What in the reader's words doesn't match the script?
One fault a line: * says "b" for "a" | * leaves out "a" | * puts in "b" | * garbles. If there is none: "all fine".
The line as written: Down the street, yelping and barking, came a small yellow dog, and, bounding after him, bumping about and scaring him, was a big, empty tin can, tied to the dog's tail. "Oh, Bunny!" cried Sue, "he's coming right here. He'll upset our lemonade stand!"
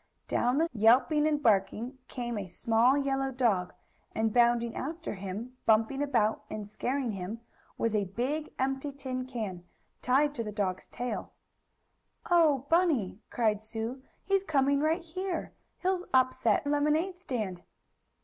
* leaves out "street"
* leaves out "our"